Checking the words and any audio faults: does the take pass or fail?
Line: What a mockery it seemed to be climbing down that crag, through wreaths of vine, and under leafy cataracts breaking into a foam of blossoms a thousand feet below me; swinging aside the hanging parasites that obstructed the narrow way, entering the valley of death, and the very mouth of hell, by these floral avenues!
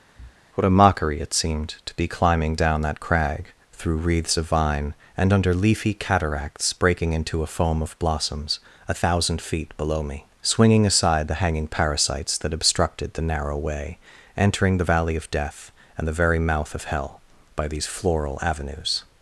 fail